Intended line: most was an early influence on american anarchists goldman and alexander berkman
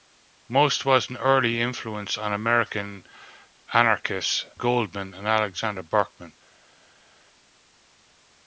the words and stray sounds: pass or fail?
pass